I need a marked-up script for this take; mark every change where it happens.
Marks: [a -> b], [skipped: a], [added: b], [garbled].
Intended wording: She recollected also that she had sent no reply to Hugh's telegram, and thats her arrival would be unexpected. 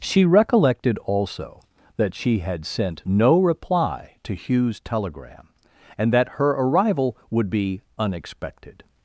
She recollected also that she had sent no reply to Hugh's telegram, and [thats -> that] her arrival would be unexpected.